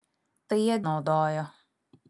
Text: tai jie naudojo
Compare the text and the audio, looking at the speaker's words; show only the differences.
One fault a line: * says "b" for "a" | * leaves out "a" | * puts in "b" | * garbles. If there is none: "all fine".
all fine